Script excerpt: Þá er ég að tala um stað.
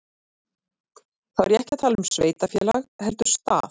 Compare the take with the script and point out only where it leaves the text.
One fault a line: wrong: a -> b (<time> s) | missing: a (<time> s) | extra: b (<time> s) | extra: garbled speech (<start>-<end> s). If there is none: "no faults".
extra: ekki (1.6 s)
extra: sveitarfélag heldur (2.1 s)